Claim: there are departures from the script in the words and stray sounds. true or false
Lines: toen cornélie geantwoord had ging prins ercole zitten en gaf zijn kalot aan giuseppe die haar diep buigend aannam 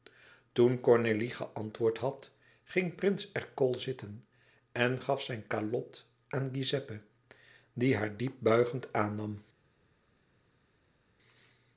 false